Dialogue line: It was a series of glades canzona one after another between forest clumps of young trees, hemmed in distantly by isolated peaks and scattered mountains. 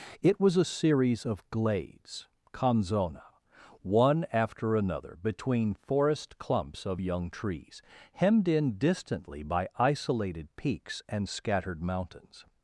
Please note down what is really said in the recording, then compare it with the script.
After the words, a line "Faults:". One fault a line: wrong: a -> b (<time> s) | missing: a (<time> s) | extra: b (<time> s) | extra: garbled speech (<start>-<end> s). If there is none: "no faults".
It was a series of glades canzona one after another between forest clumps of young trees, hemmed in distantly by isolated peaks and scattered mountains.
Faults:
no faults